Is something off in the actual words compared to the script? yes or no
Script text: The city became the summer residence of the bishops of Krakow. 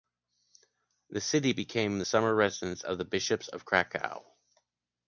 no